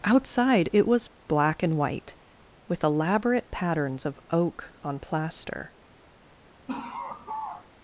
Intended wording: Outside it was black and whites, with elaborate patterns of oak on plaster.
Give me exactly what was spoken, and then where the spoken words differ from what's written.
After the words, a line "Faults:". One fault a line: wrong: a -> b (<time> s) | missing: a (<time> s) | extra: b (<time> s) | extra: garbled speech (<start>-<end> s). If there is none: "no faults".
Outside it was black and white, with elaborate patterns of oak on plaster.
Faults:
wrong: whites -> white (1.8 s)